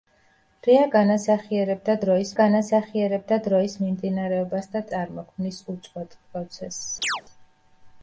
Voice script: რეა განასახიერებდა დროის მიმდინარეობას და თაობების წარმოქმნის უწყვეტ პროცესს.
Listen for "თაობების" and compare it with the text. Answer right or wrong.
wrong